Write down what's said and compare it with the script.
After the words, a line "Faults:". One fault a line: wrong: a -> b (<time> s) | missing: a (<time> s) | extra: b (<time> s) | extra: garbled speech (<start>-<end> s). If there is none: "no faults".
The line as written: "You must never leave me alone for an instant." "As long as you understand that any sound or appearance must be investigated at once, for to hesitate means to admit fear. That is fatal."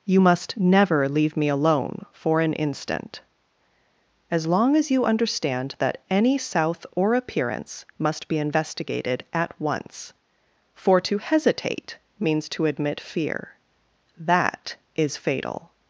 "You must never leave me alone for an instant." "As long as you understand that any south or appearance must be investigated at once, for to hesitate means to admit fear. That is fatal."
Faults:
wrong: sound -> south (6.4 s)